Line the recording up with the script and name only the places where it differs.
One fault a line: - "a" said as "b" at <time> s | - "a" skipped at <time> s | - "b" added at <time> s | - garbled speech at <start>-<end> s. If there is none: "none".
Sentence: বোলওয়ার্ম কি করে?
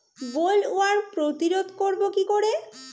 - "প্রতিরোধ করব" added at 1.1 s